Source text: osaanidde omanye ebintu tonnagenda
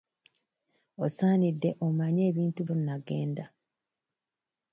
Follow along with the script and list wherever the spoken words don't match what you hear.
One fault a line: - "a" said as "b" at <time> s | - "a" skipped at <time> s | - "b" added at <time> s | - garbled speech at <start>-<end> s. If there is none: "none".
none